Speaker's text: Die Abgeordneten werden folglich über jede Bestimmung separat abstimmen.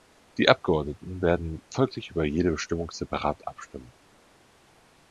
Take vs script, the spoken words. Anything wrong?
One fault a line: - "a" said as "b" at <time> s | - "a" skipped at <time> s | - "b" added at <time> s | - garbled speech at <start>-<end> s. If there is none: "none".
none